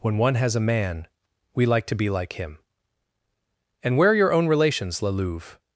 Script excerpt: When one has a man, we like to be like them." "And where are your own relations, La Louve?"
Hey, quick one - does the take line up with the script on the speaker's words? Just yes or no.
no